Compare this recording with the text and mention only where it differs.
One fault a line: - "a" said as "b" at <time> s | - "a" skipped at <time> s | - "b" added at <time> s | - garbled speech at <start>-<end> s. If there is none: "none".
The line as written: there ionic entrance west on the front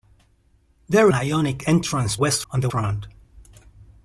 none